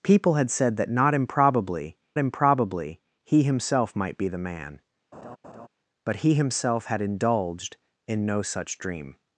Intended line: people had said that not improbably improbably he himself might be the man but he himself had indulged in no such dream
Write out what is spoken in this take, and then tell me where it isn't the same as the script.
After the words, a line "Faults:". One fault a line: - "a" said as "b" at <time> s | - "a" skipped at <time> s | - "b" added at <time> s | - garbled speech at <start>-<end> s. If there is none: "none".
people had said that not improbably improbably he himself might be the man but he himself had indulged in no such dream
Faults:
none